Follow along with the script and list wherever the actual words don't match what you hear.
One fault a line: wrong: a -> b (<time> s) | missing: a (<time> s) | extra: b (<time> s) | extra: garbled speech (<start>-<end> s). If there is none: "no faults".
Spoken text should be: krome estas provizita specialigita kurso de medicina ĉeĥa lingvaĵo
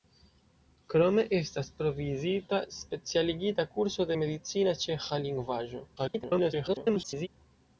extra: garbled speech (6.0-7.3 s)